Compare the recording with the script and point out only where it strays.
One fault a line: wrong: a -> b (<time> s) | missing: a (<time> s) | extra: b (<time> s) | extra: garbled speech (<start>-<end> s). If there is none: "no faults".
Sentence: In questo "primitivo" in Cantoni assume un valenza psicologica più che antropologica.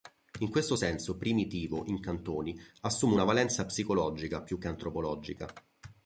extra: senso (0.7 s)
wrong: un -> una (3.1 s)